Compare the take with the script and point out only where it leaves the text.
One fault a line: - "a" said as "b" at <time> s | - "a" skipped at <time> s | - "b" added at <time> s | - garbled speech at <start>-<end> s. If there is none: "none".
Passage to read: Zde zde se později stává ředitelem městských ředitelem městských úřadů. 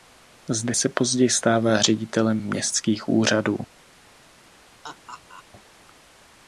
- "zde" skipped at 0.8 s
- "ředitelem městských" skipped at 3.1 s